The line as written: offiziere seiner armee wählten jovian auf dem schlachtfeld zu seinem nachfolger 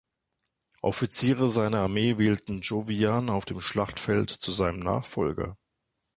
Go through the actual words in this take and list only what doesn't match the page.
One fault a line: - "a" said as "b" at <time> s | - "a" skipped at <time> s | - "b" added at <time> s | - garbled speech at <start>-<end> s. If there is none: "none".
none